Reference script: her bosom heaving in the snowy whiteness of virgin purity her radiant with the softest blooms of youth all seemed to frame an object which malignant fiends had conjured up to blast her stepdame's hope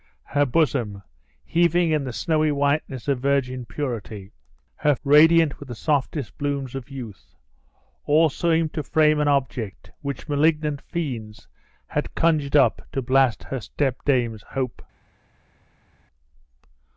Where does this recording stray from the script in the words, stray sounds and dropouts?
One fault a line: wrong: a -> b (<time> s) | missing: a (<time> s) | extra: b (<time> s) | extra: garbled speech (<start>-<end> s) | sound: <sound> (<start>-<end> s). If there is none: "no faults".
no faults